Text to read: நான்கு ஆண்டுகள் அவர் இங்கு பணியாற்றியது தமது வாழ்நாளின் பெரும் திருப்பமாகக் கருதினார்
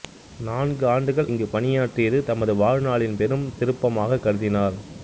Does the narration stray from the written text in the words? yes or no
yes